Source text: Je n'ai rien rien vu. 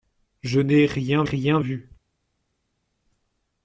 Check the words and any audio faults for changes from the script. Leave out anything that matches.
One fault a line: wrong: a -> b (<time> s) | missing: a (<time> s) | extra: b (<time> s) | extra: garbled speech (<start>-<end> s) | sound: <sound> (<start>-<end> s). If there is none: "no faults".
no faults